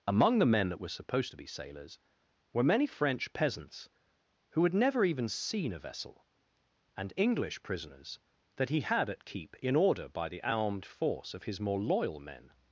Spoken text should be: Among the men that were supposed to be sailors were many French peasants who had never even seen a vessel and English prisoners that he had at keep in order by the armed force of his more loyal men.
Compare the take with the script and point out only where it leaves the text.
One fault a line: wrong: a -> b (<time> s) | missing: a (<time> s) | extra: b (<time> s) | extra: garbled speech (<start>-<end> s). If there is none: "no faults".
no faults